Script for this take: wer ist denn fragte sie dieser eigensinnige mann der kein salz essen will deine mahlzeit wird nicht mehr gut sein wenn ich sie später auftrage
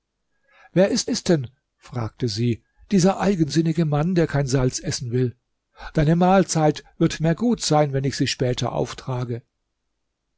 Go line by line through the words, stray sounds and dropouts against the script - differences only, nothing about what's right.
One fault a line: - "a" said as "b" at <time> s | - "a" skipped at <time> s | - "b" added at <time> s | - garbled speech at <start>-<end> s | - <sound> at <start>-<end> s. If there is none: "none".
- "ist" added at 1.1 s
- "nicht" skipped at 7.2 s